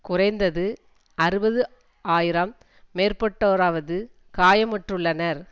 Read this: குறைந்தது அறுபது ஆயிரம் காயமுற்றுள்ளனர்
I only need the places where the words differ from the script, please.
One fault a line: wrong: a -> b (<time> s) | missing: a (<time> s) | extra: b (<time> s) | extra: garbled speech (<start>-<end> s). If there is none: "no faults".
extra: மேற்பட்டோராவது (3.0 s)